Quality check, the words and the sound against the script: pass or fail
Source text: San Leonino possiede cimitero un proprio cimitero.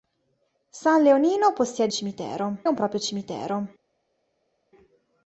pass